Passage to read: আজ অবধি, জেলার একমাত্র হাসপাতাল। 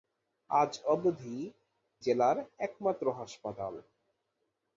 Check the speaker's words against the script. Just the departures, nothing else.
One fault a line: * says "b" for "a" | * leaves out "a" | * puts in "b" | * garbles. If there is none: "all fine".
all fine